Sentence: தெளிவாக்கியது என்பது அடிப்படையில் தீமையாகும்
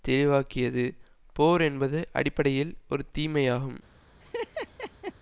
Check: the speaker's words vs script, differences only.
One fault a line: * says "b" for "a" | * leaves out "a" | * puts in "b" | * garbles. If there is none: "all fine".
* puts in "போர்"
* puts in "ஒரு"